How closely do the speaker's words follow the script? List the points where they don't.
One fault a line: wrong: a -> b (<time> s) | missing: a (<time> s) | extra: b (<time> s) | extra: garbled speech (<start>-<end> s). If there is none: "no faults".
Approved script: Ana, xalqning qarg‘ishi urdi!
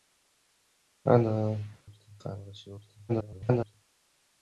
wrong: xalqning -> urdi (1.9 s)
extra: garbled speech (3.1-3.8 s)